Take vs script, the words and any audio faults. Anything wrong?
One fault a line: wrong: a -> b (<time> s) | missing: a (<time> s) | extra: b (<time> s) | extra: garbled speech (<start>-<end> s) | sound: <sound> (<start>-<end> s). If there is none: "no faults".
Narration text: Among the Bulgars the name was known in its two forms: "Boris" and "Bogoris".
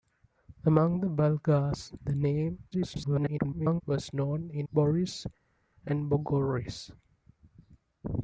extra: garbled speech (2.7-3.8 s)
missing: its two forms (4.7 s)